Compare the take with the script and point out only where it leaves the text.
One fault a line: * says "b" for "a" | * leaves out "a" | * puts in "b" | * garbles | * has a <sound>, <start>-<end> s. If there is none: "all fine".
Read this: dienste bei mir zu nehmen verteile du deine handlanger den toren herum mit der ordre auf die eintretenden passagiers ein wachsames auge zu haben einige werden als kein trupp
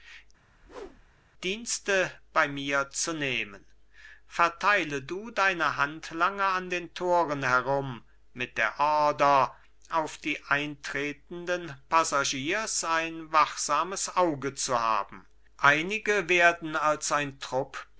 * has a whoosh, 0.4-1.2 s
* puts in "an"
* says "ein" for "kein"